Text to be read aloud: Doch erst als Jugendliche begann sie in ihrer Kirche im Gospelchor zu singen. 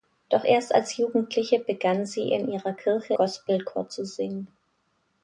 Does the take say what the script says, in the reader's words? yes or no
no